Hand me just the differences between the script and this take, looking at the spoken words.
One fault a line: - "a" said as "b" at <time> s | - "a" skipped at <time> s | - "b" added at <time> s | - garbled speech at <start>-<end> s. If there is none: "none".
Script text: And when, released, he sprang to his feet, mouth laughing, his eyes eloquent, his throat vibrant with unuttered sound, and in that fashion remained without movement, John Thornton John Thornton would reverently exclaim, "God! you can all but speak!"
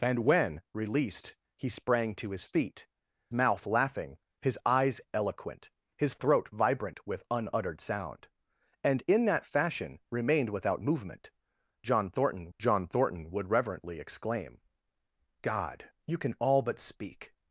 none